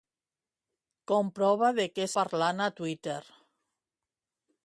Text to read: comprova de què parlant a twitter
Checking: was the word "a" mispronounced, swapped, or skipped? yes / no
no